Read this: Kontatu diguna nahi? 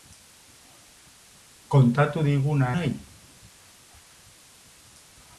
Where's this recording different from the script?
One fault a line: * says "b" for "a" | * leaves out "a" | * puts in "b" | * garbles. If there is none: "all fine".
all fine